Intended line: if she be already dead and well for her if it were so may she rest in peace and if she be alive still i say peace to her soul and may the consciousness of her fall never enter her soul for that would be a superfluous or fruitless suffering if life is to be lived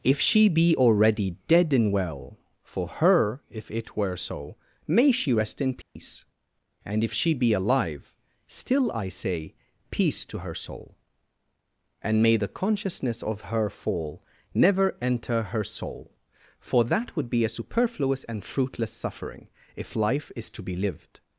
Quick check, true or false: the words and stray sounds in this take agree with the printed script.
false